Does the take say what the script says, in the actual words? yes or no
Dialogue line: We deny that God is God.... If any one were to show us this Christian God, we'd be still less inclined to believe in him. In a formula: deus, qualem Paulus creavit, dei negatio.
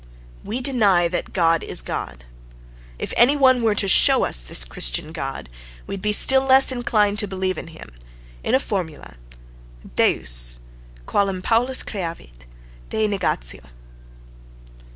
yes